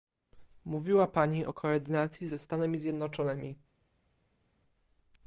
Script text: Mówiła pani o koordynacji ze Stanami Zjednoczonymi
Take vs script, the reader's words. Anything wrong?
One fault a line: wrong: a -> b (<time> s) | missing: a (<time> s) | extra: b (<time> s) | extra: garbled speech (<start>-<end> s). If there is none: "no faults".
no faults